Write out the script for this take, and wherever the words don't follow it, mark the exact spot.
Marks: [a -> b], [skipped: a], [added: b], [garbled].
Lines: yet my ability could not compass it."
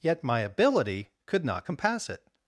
yet my ability could not compass it."